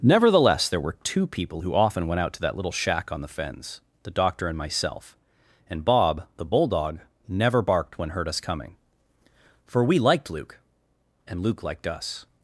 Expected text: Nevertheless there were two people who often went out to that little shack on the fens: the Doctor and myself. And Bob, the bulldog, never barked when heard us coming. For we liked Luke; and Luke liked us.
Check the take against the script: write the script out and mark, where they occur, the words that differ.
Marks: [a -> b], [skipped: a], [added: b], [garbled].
Nevertheless there were two people who often went out to that little shack on the fens: the Doctor and myself. And Bob, the bulldog, never barked when heard us coming. For we liked Luke; and Luke liked us.